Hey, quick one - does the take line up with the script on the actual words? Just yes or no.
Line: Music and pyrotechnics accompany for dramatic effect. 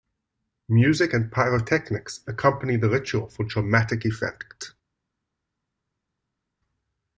no